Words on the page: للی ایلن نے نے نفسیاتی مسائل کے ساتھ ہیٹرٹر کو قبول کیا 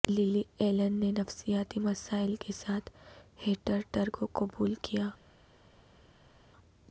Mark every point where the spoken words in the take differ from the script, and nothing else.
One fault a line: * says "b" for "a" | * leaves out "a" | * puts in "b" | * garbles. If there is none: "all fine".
* leaves out "نے"